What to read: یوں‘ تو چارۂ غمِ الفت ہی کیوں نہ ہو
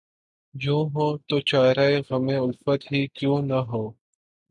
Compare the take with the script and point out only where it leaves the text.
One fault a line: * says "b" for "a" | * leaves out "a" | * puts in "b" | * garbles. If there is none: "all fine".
* puts in "ہو"